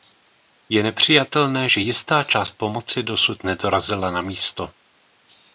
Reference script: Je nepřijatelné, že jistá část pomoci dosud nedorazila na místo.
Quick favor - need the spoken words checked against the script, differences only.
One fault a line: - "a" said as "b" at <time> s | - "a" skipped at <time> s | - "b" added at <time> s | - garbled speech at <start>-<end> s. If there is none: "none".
none